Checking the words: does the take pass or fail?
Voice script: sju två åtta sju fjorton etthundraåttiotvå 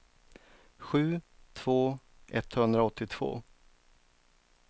fail